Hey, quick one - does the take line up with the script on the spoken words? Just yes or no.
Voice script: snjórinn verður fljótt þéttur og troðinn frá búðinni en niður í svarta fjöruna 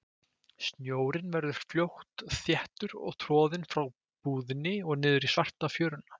no